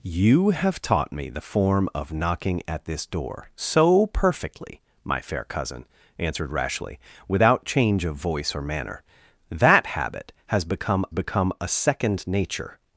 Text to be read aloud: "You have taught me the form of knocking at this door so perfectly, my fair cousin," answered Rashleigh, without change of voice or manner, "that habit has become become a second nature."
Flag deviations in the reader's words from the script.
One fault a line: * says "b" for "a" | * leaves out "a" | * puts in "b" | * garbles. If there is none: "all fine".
all fine